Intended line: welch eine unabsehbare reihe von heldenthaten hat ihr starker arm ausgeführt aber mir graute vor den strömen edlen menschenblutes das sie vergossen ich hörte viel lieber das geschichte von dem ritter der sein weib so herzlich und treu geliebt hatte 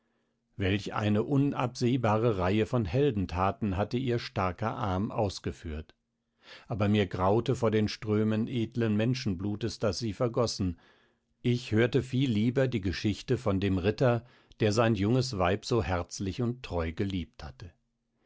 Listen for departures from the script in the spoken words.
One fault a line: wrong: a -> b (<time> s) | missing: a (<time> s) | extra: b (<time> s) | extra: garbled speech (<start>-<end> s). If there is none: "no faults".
wrong: hat -> hatte (3.8 s)
wrong: das -> die (12.7 s)
extra: junges (14.9 s)